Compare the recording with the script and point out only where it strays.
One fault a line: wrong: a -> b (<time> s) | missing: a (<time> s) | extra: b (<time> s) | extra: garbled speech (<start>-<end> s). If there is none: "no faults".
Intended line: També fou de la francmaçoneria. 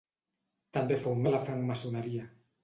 no faults